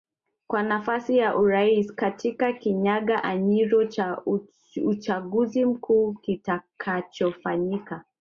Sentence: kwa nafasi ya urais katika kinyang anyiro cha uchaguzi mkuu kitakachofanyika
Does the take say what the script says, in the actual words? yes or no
yes